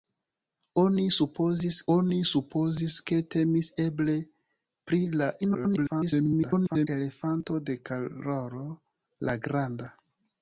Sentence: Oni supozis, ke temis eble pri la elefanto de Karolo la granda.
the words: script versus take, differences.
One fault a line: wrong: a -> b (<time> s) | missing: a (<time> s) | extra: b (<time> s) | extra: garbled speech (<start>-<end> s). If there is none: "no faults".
extra: oni supozis (2.0 s)
extra: garbled speech (5.4-6.9 s)